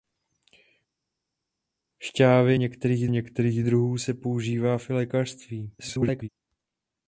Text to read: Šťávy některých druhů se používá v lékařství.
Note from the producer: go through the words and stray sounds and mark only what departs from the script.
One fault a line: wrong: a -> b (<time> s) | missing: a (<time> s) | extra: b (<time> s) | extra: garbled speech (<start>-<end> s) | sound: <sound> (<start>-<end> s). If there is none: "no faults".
extra: některých (3.1 s)
extra: garbled speech (5.8-6.3 s)